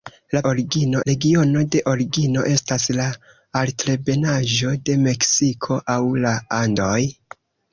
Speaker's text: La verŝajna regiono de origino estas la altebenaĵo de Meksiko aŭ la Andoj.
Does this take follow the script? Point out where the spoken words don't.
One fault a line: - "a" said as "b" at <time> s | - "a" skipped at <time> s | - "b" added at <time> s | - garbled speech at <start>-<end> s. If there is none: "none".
- "verŝajna" said as "origino" at 0.5 s